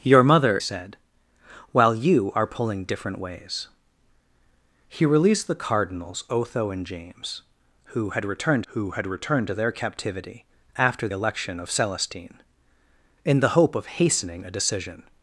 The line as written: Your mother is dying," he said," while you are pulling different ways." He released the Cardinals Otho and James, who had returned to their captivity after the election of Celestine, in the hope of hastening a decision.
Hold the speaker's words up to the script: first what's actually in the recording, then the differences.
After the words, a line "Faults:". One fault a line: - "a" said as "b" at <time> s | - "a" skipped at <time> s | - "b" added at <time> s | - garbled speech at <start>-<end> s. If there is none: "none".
Your mother said," while you are pulling different ways." He released the Cardinals Otho and James, who had returned who had returned to their captivity after election of Celestine, in the hope of hastening a decision.
Faults:
- "is dying he" skipped at 0.6 s
- "who had returned" added at 8.7 s
- "the" skipped at 11.1 s